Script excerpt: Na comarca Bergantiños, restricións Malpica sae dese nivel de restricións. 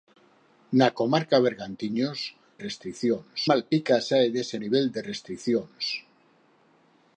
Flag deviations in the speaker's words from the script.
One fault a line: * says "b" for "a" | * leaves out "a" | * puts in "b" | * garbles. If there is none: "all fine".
all fine